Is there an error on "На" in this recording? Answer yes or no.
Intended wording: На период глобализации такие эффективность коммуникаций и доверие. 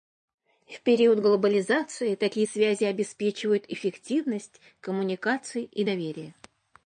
yes